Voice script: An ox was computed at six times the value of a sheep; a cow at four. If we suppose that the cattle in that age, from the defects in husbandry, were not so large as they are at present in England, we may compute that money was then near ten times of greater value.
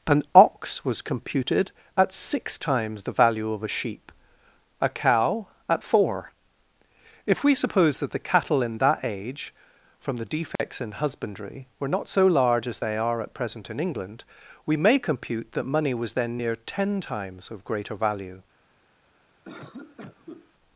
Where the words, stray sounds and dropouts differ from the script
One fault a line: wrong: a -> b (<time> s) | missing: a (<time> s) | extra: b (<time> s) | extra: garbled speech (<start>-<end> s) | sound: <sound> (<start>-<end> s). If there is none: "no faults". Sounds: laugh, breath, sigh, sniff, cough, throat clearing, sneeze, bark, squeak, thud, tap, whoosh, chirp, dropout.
sound: dropout (10.6-10.6 s)
sound: cough (19.4-20.5 s)